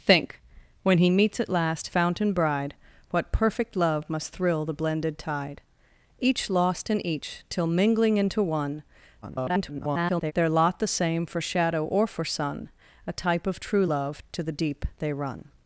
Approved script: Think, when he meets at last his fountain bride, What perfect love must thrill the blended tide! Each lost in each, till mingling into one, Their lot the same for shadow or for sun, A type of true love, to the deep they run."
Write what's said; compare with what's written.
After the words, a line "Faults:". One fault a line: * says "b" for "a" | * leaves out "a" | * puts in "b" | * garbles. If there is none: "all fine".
Think, when he meets at last fountain bride, What perfect love must thrill the blended tide! Each lost in each, till mingling into one, [garbled] Their lot the same for shadow or for sun, A type of true love, to the deep they run."
Faults:
* leaves out "his"
* garbles